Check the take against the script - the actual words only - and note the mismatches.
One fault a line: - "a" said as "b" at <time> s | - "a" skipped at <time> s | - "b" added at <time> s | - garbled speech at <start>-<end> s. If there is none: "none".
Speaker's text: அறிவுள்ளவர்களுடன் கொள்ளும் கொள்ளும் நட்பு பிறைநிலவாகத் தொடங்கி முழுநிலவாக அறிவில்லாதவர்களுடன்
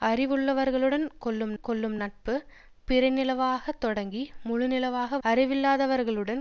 none